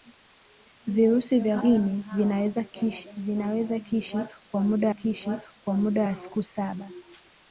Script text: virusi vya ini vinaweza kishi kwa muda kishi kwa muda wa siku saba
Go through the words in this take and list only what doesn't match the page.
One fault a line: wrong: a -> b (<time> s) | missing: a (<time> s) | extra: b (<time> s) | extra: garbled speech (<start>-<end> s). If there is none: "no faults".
no faults